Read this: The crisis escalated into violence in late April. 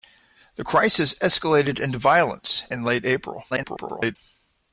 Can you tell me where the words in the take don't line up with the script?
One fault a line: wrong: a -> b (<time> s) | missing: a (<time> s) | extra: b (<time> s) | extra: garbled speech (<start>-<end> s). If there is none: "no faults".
extra: garbled speech (3.5-4.2 s)